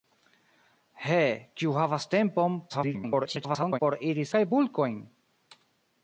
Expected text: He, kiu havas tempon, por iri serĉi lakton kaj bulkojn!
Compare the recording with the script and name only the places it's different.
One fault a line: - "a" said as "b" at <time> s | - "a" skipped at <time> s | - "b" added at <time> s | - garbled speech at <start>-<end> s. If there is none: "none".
- garbled speech at 2.7-3.8 s
- "serĉi lakton" skipped at 4.3 s